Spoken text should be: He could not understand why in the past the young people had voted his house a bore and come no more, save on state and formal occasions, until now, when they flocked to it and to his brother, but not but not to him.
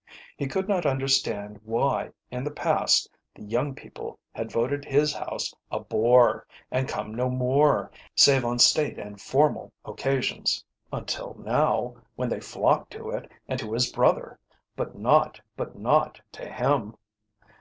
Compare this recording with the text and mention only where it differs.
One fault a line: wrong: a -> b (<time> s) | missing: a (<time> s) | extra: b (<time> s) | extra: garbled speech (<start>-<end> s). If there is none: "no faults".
no faults